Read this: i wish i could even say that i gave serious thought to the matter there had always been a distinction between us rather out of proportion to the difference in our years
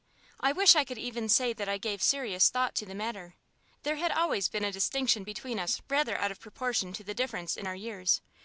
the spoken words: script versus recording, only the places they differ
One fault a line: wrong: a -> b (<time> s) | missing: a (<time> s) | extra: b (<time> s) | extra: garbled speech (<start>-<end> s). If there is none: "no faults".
no faults